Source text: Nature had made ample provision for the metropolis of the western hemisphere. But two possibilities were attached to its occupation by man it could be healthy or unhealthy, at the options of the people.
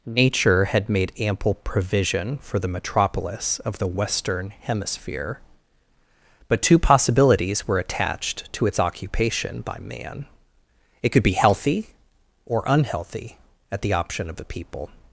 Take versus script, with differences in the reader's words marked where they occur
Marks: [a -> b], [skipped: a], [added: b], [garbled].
Nature had made ample provision for the metropolis of the western hemisphere. But two possibilities were attached to its occupation by man it could be healthy or unhealthy, at the [options -> option] of the people.